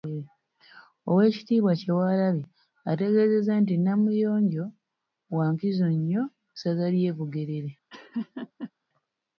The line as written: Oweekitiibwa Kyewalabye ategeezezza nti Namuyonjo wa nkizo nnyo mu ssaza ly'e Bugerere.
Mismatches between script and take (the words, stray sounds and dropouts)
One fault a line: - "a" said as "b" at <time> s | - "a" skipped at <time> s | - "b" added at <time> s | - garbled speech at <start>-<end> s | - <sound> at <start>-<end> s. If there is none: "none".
- laugh at 7.9-8.7 s